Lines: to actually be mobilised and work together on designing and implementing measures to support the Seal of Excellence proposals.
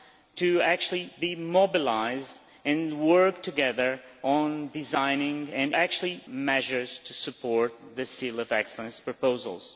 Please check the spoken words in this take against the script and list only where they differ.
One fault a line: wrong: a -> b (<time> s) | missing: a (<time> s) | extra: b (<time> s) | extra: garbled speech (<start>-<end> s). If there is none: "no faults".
wrong: implementing -> actually (5.7 s)